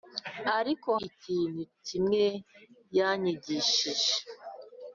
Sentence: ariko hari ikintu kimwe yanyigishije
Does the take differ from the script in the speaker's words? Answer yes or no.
yes